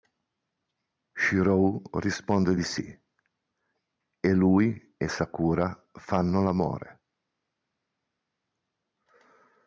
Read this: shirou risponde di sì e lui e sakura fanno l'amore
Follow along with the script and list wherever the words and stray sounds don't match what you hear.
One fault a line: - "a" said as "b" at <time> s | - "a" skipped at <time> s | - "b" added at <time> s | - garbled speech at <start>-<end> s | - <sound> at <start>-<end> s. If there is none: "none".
none